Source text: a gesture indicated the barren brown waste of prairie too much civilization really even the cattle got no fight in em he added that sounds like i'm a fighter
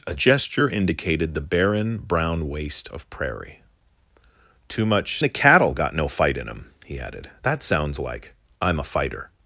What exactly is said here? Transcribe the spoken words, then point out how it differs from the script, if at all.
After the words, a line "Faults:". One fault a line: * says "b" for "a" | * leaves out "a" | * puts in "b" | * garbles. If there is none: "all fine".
a gesture indicated the barren brown waste of prairie too much the cattle got no fight in em he added that sounds like i'm a fighter
Faults:
* leaves out "civilization really even"